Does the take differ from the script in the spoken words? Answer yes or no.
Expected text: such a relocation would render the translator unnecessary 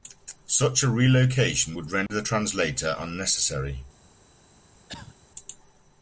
no